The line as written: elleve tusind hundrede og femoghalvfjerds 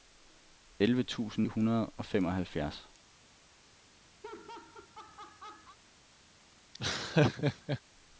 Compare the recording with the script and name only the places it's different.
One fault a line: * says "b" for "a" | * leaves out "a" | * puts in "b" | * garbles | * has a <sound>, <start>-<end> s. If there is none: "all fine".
* has a laugh, 4.2-5.8 s
* has a laugh, 6.7-7.8 s